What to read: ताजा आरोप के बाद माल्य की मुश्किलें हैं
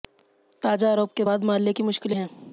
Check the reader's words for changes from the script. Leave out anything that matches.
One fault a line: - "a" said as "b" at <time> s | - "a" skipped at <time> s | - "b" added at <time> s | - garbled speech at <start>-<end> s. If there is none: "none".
none